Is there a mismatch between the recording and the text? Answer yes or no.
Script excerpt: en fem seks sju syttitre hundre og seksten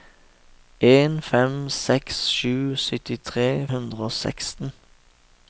no